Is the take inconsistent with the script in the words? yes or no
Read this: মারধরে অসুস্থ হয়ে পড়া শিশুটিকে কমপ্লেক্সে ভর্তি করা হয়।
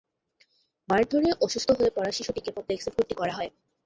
no